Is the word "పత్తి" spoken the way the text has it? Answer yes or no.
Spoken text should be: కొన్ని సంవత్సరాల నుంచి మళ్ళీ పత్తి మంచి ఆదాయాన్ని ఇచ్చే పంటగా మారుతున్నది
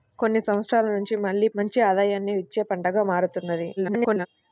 no